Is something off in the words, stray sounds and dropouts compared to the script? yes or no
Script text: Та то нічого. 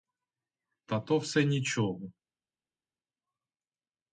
yes